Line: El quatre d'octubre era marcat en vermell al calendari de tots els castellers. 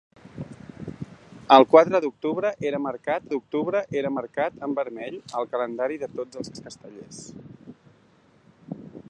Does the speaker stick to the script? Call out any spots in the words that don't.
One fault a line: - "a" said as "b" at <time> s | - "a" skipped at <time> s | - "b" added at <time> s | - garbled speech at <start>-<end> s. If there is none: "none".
- "d'octubre era marcat" added at 3.3 s
- "els" added at 6.5 s